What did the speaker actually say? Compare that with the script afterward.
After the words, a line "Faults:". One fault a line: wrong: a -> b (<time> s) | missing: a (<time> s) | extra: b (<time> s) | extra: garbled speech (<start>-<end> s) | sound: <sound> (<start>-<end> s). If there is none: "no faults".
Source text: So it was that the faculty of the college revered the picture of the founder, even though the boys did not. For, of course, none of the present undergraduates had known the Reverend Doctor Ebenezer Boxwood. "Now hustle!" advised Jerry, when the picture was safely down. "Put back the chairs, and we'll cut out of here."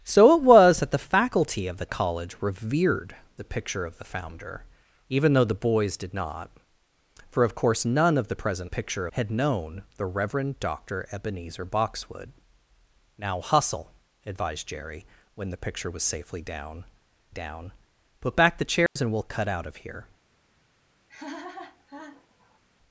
So it was that the faculty of the college revered the picture of the founder, even though the boys did not. For, of course, none of the present picture had known the Reverend Doctor Ebenezer Boxwood. "Now hustle!" advised Jerry, when the picture was safely down down. "Put back the chairs, and we'll cut out of here."
Faults:
wrong: undergraduates -> picture (8.6 s)
extra: down (17.3 s)
sound: dropout (18.9-19.0 s)
sound: laugh (21.1-22.6 s)